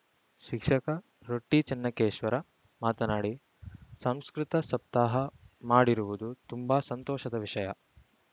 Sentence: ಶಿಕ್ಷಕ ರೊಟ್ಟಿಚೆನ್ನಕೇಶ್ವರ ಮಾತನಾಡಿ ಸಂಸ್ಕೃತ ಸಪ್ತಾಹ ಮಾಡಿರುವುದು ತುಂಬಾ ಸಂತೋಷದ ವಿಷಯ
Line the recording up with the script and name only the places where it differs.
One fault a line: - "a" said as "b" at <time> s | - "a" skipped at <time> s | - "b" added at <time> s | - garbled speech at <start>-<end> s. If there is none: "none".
none